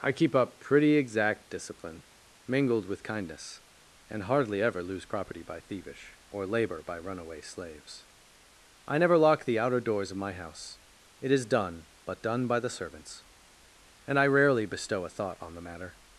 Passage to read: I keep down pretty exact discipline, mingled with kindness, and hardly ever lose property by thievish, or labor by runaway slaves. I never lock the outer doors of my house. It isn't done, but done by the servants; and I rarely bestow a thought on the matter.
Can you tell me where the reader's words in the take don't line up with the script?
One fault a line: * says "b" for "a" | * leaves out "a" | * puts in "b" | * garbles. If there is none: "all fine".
* says "up" for "down"
* says "is" for "isn't"